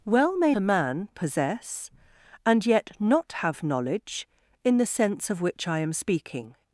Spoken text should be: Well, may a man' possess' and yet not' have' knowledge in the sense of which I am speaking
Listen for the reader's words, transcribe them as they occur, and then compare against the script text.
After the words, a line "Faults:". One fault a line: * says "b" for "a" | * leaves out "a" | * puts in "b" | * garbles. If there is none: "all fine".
Well, may a man' possess' and yet not' have' knowledge in the sense of which I am speaking
Faults:
all fine